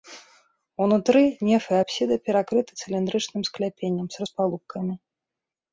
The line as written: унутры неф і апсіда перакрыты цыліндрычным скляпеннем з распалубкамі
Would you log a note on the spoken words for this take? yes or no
no